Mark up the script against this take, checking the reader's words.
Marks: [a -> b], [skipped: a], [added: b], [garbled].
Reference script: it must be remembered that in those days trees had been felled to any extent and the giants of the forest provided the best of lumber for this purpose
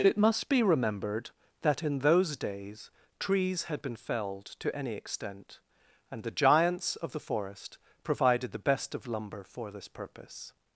it must be remembered that in those days trees had been felled to any extent and the giants of the forest provided the best of lumber for this purpose